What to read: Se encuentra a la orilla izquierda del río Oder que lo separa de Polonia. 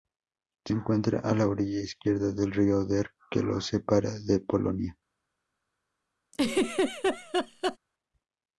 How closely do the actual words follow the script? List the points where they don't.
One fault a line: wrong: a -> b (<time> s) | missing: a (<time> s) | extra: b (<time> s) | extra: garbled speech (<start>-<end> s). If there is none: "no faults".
no faults